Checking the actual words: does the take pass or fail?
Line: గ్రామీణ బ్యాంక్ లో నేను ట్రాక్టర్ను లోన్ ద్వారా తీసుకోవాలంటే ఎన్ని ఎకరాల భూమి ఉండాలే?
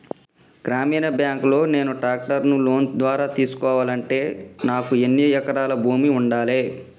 fail